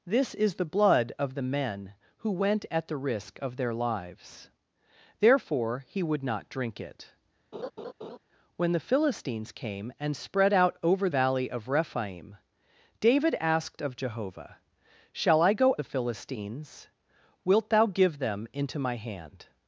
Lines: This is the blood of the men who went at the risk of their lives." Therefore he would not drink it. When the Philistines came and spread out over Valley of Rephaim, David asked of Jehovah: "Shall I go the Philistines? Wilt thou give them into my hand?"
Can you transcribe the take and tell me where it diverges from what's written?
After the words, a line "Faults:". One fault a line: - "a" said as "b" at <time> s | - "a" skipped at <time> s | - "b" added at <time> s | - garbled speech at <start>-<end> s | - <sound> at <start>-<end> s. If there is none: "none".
This is the blood of the men who went at the risk of their lives." Therefore he would not drink it. When the Philistines came and spread out over Valley of Rephaim, David asked of Jehovah: "Shall I go the Philistines? Wilt thou give them into my hand?"
Faults:
- laugh at 7.5-8.2 s